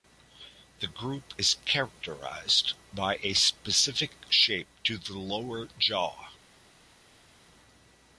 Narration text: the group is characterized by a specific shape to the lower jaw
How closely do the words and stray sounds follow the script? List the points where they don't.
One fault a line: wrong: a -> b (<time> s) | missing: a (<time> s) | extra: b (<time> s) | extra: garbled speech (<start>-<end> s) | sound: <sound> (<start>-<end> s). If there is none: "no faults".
no faults